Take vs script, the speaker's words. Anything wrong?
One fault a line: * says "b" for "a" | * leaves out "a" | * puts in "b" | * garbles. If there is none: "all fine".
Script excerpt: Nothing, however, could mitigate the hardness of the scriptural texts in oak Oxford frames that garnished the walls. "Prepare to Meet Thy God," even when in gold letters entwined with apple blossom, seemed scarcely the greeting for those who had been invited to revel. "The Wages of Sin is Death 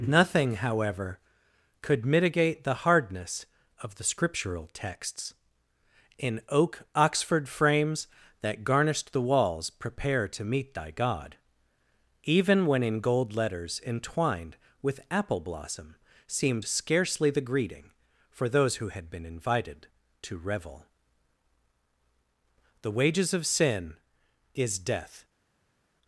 all fine